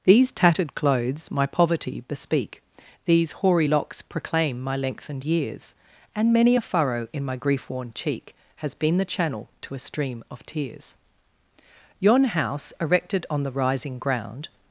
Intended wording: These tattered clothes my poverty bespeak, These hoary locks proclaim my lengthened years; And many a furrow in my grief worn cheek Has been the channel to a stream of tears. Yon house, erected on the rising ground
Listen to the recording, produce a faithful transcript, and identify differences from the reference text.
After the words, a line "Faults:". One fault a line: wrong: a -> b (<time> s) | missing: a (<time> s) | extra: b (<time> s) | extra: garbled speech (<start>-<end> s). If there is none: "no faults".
These tattered clothes my poverty bespeak, These hoary locks proclaim my lengthened years; And many a furrow in my grief worn cheek Has been the channel to a stream of tears. Yon house, erected on the rising ground
Faults:
no faults